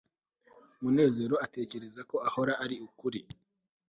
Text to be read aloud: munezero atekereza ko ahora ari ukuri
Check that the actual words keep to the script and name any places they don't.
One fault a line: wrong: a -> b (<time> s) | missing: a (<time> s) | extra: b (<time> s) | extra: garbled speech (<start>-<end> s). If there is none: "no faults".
no faults